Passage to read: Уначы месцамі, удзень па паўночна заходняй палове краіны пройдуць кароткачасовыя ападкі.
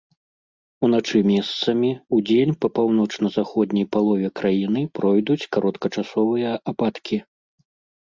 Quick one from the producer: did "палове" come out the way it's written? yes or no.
yes